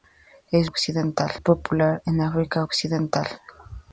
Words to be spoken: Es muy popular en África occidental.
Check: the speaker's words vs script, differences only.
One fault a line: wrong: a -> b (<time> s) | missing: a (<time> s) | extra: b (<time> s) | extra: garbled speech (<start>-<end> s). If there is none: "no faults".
wrong: muy -> occidental (0.6 s)